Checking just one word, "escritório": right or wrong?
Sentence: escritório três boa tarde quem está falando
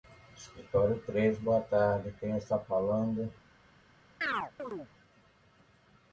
right